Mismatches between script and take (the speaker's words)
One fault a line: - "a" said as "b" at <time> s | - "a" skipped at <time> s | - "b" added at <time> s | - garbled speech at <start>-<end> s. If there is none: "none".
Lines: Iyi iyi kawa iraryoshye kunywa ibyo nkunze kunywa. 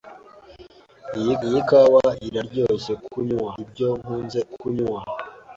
none